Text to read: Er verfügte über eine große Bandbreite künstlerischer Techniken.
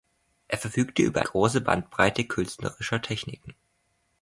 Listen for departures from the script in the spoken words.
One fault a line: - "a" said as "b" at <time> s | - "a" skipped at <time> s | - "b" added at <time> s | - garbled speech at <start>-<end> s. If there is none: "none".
- "eine" skipped at 1.2 s